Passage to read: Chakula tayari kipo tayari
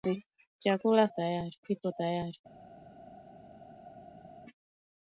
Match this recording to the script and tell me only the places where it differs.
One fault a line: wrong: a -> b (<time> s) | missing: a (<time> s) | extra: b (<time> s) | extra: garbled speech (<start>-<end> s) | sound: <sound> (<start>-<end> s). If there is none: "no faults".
no faults